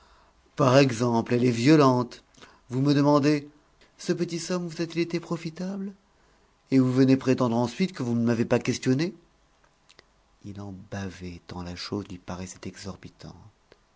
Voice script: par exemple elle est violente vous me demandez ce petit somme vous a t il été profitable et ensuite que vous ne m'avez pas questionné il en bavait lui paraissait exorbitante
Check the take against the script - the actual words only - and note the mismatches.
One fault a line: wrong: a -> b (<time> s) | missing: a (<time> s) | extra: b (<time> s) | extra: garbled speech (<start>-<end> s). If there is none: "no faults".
extra: vous venez prétendre (6.8 s)
extra: tant la chose (11.4 s)